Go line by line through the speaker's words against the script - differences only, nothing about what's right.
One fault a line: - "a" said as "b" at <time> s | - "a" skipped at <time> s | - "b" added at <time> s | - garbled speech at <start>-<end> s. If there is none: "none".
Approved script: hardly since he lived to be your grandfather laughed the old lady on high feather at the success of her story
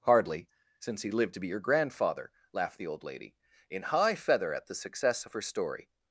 - "on" said as "in" at 3.7 s